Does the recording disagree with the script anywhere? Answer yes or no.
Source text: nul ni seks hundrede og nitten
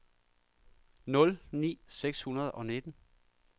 no